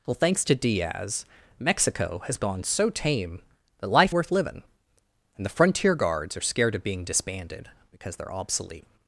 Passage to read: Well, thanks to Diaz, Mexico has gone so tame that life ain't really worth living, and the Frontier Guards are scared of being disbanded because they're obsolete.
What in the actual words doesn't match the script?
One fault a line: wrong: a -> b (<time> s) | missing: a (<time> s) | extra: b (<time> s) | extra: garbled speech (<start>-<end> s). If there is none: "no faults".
missing: ain't really (4.2 s)